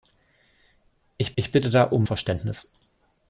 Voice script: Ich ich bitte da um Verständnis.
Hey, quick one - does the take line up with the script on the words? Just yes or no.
yes